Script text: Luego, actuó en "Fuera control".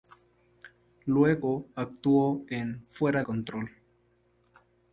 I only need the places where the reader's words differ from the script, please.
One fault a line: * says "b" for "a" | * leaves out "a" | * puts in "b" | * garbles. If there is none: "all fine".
all fine